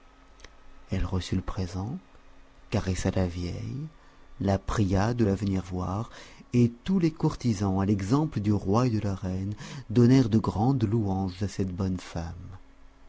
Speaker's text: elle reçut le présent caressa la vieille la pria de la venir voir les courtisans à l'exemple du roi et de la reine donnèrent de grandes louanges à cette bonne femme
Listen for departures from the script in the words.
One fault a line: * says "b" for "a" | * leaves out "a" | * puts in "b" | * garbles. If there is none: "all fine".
* puts in "et tous"